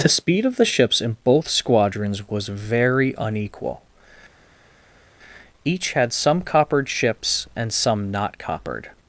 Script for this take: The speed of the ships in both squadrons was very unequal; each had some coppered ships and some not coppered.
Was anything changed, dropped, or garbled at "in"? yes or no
no